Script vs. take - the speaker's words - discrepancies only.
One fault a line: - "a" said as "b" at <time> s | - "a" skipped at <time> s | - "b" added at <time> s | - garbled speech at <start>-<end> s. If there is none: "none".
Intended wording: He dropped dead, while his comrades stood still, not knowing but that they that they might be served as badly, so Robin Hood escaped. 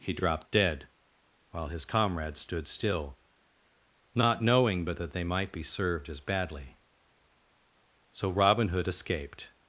- "that they" skipped at 5.3 s